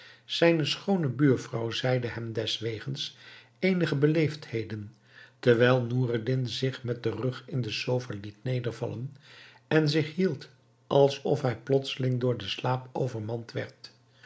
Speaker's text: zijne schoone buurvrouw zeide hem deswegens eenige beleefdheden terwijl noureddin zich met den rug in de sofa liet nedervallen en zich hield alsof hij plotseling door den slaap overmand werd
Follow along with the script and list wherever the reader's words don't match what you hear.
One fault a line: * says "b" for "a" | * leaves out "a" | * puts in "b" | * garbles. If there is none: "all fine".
all fine